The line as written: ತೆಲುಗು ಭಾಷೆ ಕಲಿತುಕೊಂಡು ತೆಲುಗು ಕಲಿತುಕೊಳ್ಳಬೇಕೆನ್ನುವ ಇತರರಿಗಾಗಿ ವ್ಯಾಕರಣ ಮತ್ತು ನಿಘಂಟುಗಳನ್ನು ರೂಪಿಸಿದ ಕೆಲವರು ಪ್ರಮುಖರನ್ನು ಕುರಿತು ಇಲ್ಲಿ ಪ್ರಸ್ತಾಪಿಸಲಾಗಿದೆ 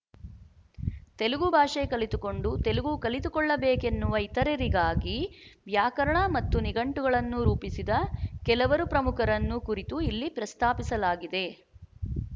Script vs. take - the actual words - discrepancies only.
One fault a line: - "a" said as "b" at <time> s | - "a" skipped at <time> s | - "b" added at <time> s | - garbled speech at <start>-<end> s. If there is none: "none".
none